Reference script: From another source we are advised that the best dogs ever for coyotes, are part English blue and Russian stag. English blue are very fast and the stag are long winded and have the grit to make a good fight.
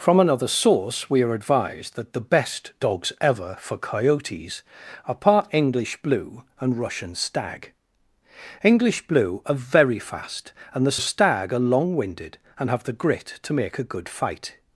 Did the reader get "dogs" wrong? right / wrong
right